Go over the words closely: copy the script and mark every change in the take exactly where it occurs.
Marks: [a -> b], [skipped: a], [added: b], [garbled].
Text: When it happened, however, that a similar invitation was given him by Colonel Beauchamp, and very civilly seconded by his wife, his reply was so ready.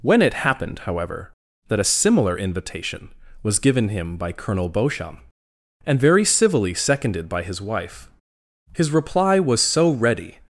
When it happened, however, that a similar invitation was given him by Colonel Beauchamp, and very civilly seconded by his wife, his reply was so ready.